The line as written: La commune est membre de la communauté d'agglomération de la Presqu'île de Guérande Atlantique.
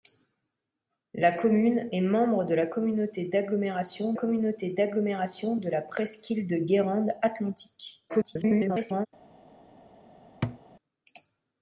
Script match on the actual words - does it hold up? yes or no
no